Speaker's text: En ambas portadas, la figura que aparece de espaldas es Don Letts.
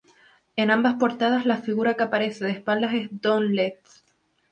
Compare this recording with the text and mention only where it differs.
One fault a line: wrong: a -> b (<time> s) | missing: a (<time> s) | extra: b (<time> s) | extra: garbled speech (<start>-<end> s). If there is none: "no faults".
no faults